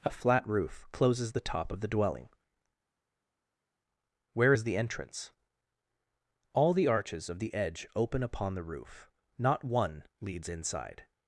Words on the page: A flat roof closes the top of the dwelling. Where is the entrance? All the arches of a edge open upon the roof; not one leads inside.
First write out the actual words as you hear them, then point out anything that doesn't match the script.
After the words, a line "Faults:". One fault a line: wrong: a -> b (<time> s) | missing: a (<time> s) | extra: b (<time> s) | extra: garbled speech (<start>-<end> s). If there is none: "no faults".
A flat roof closes the top of the dwelling. Where is the entrance? All the arches of the edge open upon the roof; not one leads inside.
Faults:
wrong: a -> the (7.4 s)